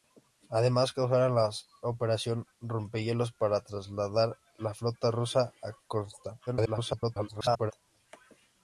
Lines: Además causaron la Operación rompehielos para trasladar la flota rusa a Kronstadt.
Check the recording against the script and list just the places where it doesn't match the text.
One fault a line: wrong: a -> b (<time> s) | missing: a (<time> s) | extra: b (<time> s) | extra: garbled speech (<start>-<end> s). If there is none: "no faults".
extra: garbled speech (6.5-7.7 s)